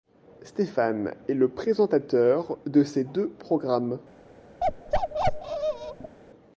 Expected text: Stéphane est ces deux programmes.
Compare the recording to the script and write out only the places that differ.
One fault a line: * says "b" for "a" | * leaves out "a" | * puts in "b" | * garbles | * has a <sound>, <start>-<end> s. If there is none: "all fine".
* puts in "le présentateur de"
* has a bark, 4.6-6.2 s